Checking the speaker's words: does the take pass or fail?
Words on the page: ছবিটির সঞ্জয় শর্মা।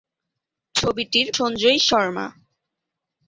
pass